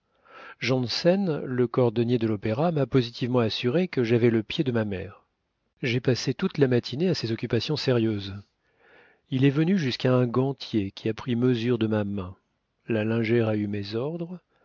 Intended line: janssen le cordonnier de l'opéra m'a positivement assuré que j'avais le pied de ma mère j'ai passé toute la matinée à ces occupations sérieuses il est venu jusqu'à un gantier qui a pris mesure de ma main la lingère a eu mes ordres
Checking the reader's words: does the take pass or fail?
pass